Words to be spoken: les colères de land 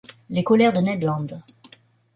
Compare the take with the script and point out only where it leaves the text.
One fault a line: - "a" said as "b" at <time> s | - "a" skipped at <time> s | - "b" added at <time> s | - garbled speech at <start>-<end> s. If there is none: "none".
- "ned" added at 0.8 s